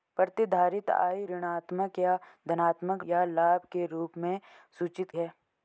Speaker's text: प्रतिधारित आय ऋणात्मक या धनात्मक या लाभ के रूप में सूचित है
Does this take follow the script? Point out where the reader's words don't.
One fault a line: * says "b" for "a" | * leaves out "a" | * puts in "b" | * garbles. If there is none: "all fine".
all fine